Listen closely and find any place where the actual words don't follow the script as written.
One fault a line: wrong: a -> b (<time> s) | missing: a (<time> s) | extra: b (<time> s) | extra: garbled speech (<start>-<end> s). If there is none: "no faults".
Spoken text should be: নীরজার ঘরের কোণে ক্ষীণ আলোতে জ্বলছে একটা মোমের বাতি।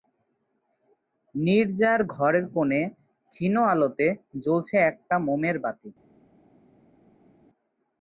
no faults